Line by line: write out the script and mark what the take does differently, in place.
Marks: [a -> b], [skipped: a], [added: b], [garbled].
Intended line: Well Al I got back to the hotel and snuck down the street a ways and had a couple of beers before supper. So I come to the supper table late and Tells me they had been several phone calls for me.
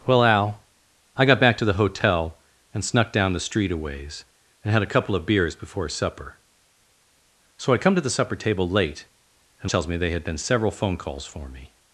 Well Al I got back to the hotel and snuck down the street a ways and had a couple of beers before supper. So I come to the supper table late and Tells me they had been several phone calls for me.